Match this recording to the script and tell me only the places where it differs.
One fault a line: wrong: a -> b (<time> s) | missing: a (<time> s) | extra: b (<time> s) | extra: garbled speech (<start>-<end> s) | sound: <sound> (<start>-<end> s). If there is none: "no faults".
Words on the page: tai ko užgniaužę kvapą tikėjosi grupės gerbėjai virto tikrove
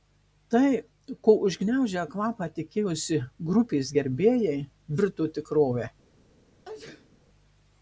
sound: sneeze (6.6-7.2 s)